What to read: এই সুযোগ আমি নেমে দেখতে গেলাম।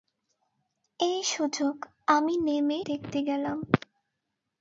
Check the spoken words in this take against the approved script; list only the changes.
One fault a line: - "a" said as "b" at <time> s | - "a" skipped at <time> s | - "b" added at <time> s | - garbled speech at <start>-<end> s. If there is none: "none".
none